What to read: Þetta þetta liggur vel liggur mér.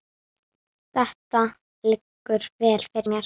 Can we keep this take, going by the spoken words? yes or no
no